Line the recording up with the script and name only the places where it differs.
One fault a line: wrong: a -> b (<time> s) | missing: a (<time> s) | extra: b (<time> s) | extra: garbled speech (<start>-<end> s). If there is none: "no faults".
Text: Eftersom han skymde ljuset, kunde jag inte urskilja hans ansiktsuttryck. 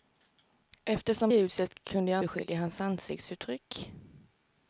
missing: han skymde (1.3 s)
missing: inte (2.2 s)